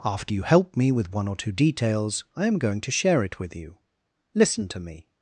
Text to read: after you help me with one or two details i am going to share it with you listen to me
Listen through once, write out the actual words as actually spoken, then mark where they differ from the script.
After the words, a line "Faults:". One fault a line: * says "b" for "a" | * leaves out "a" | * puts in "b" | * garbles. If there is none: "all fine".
after you help me with one or two details i am going to share it with you listen to me
Faults:
all fine